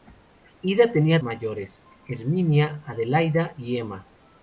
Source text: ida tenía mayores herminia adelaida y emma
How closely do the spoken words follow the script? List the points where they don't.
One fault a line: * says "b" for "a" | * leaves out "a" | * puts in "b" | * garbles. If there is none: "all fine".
all fine